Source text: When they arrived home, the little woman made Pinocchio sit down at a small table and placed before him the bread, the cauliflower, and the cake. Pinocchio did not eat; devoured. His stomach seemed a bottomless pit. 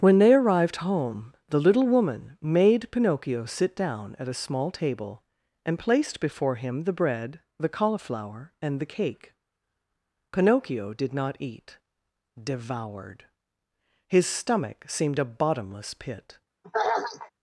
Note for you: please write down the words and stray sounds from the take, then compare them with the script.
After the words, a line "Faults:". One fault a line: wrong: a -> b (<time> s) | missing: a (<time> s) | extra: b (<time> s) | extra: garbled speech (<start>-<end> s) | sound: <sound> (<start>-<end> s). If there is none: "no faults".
When they arrived home, the little woman made Pinocchio sit down at a small table and placed before him the bread, the cauliflower, and the cake. Pinocchio did not eat; devoured. His stomach seemed a bottomless pit.
Faults:
sound: throat clearing (16.6-17.3 s)